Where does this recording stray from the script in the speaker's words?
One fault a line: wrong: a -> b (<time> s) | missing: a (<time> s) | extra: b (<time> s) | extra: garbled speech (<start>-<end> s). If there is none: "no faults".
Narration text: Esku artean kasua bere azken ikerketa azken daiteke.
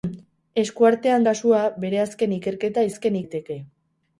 no faults